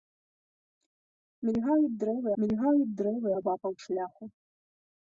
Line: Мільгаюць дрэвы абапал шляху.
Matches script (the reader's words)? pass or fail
fail